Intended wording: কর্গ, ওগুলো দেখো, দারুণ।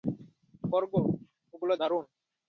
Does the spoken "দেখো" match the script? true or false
false